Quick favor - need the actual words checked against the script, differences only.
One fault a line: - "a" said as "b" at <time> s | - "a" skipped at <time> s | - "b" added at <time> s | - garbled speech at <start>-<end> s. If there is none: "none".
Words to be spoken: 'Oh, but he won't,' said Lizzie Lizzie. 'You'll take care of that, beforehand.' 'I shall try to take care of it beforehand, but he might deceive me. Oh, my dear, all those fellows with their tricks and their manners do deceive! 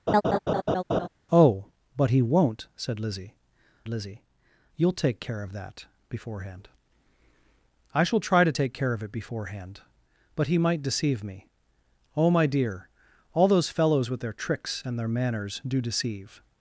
none